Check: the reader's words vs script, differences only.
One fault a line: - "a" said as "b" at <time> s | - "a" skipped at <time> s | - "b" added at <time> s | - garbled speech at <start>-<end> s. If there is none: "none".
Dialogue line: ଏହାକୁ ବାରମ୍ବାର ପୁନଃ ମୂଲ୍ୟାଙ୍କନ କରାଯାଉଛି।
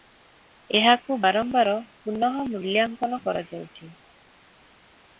none